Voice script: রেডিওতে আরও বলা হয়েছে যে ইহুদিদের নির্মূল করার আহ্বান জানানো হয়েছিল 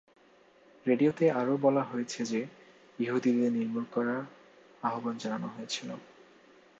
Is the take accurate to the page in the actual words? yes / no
yes